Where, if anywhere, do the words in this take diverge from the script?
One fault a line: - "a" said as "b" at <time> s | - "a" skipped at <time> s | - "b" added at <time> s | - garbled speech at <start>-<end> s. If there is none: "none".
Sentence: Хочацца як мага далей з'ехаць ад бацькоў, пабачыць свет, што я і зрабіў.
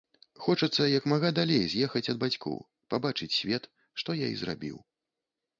none